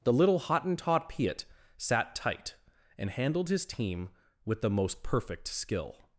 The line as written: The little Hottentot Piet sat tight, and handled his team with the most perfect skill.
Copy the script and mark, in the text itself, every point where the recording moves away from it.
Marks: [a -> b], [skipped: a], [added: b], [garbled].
The little Hottentot Piet sat tight, and handled his team with the most perfect skill.